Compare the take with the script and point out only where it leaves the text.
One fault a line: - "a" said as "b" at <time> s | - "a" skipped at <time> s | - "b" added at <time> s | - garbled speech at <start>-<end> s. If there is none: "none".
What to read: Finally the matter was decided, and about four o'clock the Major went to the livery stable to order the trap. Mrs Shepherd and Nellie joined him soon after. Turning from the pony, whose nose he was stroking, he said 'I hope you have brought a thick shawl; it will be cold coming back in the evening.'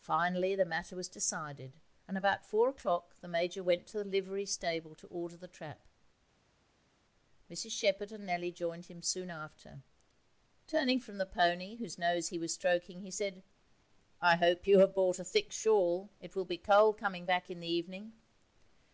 none